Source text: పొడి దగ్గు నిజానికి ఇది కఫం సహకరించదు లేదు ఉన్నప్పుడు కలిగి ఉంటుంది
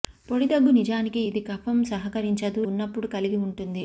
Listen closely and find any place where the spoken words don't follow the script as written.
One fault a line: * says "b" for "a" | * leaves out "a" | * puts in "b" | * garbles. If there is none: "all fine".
* leaves out "లేదు"